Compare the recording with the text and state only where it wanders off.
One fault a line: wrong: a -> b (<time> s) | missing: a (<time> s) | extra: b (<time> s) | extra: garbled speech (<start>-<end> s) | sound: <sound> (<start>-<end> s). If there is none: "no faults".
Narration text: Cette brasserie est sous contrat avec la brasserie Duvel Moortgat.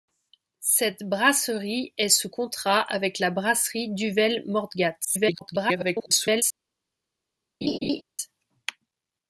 extra: garbled speech (5.0-6.4 s)
sound: laugh (7.6-8.0 s)